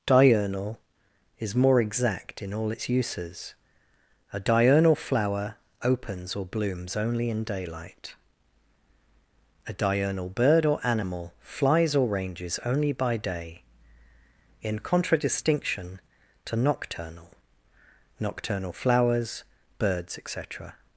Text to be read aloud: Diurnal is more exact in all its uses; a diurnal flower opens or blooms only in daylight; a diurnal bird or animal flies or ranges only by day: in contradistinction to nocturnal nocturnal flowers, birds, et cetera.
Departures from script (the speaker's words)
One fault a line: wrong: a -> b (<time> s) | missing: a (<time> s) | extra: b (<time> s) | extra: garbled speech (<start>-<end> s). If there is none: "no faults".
no faults